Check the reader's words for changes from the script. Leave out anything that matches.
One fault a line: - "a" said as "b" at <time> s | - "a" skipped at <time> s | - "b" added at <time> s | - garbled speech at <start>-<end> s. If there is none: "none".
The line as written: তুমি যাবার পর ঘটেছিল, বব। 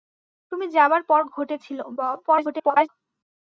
- garbled speech at 2.3-2.9 s